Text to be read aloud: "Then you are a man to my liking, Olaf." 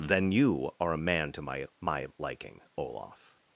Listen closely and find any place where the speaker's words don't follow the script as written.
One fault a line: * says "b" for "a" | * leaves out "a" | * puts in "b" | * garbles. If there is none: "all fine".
* puts in "my"